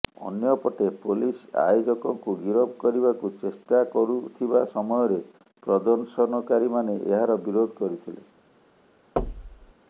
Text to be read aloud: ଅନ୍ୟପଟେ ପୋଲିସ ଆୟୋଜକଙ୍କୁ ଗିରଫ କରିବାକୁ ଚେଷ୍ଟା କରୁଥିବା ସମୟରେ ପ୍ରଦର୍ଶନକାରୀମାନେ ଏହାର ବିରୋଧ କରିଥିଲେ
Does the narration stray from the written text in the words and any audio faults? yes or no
yes